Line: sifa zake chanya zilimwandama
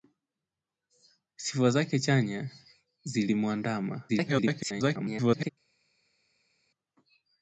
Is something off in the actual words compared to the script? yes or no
yes